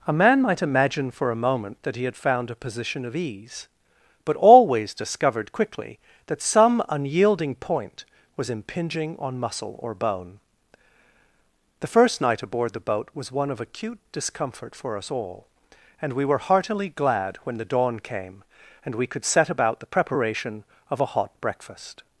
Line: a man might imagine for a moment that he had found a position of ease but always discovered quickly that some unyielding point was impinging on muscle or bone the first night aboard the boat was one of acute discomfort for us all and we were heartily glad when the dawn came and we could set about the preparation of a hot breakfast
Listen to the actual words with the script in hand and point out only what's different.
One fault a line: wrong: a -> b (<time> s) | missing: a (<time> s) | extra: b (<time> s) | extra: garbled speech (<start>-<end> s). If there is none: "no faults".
no faults